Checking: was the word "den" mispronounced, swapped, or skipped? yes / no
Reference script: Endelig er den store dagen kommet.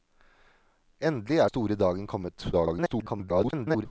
yes